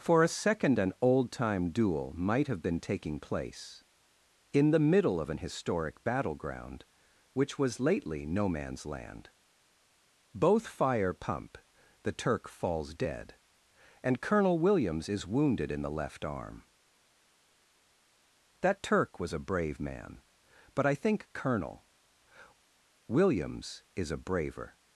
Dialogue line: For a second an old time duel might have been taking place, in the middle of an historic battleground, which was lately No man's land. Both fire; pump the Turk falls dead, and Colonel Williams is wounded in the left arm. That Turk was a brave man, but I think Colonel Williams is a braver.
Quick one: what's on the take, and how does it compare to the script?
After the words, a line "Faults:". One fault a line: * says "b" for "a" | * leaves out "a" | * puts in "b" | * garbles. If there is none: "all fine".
For a second an old time duel might have been taking place, in the middle of an historic battleground, which was lately No man's land. Both fire; pump the Turk falls dead, and Colonel Williams is wounded in the left arm. That Turk was a brave man, but I think Colonel Williams is a braver.
Faults:
all fine